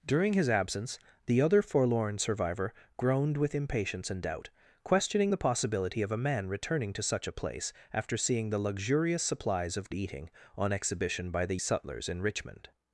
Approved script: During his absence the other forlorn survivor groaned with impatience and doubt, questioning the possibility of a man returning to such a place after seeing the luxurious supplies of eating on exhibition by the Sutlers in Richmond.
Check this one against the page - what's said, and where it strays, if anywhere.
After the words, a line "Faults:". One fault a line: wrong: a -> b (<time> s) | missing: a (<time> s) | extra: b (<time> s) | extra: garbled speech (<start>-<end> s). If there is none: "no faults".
During his absence the other forlorn survivor groaned with impatience and doubt, questioning the possibility of a man returning to such a place after seeing the luxurious supplies of eating on exhibition by the Sutlers in Richmond.
Faults:
no faults